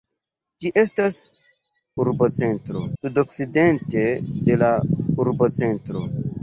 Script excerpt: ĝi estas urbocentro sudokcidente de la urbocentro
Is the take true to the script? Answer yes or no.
yes